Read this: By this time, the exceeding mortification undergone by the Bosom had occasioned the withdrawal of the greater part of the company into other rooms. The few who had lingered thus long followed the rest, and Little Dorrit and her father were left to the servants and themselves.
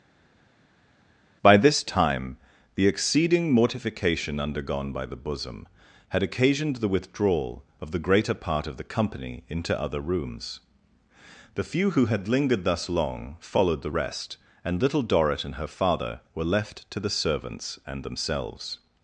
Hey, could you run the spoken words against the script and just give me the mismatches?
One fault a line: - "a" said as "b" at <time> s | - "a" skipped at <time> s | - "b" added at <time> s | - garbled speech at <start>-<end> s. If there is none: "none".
none